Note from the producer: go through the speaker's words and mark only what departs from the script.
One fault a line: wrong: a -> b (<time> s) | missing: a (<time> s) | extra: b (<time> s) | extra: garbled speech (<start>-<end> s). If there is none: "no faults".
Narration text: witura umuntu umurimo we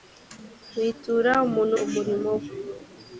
no faults